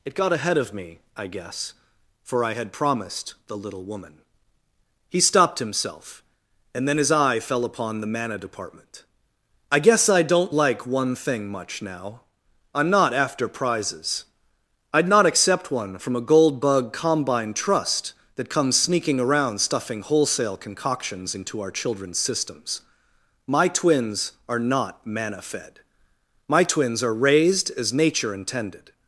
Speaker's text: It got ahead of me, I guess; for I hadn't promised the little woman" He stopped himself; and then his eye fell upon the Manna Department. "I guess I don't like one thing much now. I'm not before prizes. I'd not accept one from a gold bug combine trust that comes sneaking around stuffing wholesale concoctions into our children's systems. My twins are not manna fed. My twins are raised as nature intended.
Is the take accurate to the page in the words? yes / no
no